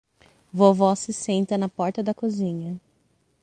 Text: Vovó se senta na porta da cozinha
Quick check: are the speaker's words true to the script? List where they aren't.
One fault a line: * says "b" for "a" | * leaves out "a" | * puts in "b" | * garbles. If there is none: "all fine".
all fine